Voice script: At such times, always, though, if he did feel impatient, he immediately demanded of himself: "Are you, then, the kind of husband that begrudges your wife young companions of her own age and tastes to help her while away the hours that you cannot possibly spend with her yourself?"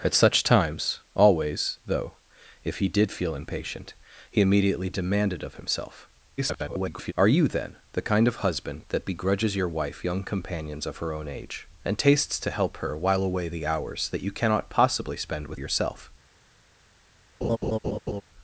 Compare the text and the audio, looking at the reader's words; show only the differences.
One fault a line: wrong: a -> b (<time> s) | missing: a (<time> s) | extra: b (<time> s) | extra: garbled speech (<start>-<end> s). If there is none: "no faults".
extra: garbled speech (6.4-7.1 s)
missing: her (15.6 s)